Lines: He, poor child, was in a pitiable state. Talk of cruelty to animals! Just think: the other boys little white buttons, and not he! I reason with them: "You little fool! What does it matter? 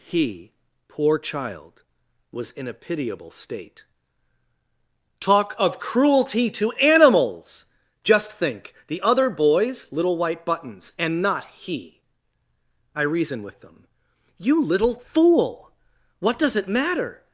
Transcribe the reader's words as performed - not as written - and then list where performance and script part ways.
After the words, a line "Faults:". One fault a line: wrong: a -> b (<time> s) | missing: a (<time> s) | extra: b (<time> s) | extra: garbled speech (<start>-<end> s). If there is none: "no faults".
He, poor child, was in a pitiable state. Talk of cruelty to animals! Just think: the other boys little white buttons, and not he! I reason with them: "You little fool! What does it matter?
Faults:
no faults